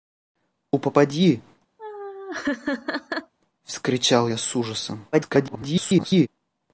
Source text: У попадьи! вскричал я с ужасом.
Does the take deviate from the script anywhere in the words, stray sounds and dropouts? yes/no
yes